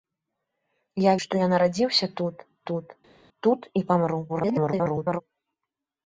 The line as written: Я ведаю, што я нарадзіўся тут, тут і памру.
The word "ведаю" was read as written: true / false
false